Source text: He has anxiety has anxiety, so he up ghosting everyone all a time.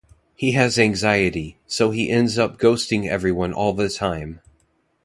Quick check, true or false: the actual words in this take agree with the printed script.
false